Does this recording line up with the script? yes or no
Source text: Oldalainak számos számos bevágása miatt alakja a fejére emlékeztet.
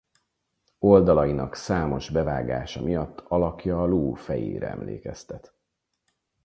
no